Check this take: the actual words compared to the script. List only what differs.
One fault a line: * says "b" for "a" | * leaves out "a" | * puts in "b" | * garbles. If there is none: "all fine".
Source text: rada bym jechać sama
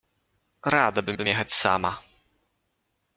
* puts in "bym"